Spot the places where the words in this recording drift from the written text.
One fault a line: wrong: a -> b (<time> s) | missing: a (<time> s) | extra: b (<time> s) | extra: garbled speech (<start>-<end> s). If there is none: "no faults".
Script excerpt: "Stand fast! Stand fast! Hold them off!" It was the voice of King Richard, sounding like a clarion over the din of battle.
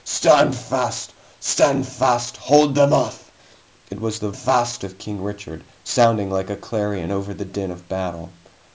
wrong: voice -> fast (4.3 s)